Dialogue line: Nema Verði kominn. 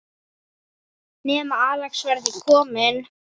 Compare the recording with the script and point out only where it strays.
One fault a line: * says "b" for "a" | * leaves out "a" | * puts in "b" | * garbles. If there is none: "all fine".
* puts in "Axel"